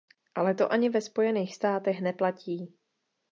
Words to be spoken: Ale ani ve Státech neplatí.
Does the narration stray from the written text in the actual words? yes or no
yes